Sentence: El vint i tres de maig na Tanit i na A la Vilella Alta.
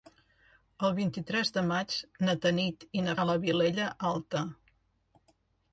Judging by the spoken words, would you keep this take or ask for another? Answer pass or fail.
pass